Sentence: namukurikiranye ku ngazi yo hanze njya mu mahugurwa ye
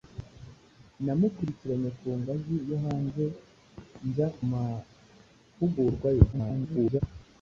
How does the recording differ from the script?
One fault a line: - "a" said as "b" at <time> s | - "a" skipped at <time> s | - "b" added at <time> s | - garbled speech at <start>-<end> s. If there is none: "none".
- "mu" skipped at 4.3 s
- garbled speech at 6.3-7.0 s